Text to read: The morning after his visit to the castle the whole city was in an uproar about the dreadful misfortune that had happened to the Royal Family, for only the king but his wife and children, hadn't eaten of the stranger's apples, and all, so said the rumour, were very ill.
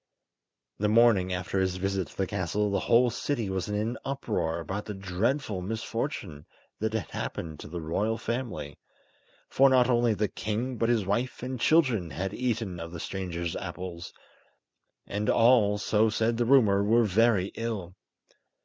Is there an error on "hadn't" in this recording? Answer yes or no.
yes